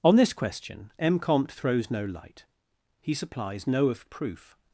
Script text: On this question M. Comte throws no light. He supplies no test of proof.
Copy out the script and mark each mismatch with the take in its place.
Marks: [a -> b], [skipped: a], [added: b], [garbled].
On this question M. Comte throws no light. He supplies no [skipped: test] of proof.